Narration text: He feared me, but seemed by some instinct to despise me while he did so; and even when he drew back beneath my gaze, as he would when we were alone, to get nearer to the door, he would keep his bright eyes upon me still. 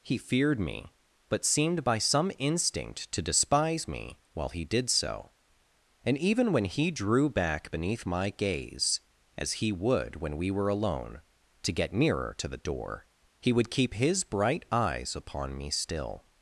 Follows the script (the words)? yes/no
yes